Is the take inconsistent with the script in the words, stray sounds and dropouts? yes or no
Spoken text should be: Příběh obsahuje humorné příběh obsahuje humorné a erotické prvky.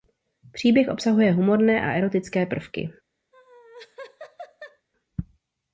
yes